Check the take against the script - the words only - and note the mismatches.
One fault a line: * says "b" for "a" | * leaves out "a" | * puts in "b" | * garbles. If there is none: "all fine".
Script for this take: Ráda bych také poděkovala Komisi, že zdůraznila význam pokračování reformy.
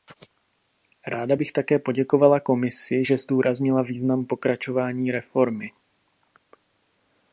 all fine